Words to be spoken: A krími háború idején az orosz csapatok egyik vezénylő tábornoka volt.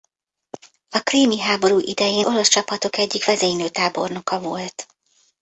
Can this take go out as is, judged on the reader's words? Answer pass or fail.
fail